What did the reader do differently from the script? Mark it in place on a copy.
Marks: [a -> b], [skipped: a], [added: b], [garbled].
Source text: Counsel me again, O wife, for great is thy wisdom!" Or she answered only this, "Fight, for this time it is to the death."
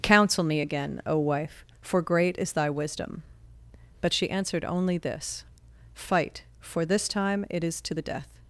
Counsel me again, O wife, for great is thy wisdom!" [Or -> But] she answered only this, "Fight, for this time it is to the death."